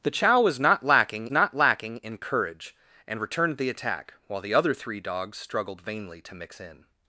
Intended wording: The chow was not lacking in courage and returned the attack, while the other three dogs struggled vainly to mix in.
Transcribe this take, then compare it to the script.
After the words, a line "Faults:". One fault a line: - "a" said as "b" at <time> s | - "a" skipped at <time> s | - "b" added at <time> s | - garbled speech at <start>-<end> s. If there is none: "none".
The chow was not lacking not lacking in courage and returned the attack, while the other three dogs struggled vainly to mix in.
Faults:
- "not lacking" added at 1.3 s